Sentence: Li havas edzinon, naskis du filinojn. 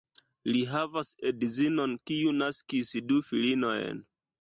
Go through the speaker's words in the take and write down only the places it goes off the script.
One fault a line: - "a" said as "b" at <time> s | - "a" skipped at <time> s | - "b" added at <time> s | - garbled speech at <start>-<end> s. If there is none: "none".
- "kiu" added at 2.1 s